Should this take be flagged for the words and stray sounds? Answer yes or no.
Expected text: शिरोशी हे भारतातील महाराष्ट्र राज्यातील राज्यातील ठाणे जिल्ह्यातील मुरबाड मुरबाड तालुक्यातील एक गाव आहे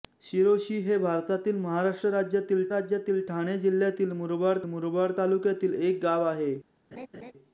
yes